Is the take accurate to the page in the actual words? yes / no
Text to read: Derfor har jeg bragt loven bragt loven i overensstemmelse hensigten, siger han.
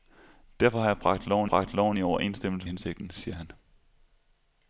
yes